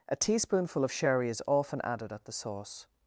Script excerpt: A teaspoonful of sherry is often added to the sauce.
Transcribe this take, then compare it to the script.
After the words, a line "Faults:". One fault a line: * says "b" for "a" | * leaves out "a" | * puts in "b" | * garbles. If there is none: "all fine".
A teaspoonful of sherry is often added at the sauce.
Faults:
* says "at" for "to"